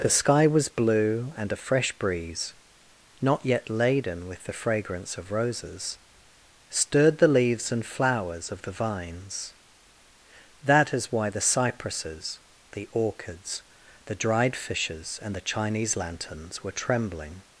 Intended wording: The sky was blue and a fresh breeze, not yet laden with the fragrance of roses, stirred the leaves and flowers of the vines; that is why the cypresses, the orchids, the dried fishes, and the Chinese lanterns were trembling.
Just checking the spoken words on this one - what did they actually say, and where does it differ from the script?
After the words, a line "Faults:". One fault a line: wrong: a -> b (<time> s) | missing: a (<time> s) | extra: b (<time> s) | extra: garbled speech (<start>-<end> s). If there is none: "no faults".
The sky was blue and a fresh breeze, not yet laden with the fragrance of roses, stirred the leaves and flowers of the vines; that is why the cypresses, the orchids, the dried fishes, and the Chinese lanterns were trembling.
Faults:
no faults